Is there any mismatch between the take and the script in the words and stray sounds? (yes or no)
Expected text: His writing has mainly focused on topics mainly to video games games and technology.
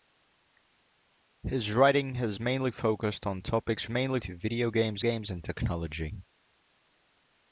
no